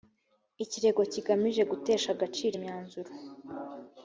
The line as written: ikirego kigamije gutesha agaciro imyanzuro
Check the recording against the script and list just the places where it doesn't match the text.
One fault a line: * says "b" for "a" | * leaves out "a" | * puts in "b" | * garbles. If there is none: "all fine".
all fine